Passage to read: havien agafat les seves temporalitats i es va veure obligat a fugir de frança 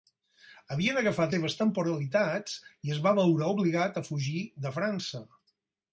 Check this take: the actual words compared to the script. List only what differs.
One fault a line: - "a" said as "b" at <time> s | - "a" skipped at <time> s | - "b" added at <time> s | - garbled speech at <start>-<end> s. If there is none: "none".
- "les" skipped at 1.4 s